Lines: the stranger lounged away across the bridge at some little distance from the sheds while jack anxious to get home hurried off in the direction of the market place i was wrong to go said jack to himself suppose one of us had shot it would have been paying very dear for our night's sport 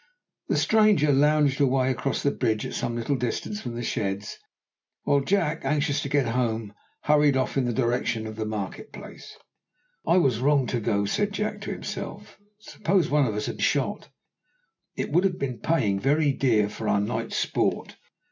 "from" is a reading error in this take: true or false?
false